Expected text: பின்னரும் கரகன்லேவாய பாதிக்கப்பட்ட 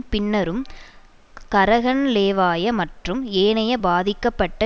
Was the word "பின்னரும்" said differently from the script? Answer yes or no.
no